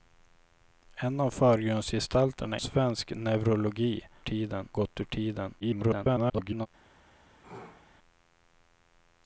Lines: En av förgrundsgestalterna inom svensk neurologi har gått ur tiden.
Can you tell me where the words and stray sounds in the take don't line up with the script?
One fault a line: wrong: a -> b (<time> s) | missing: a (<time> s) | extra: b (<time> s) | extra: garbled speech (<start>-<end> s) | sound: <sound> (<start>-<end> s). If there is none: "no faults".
missing: inom (2.6 s)
wrong: har -> tiden (4.2 s)
extra: garbled speech (5.6-6.7 s)
sound: sneeze (7.4-7.9 s)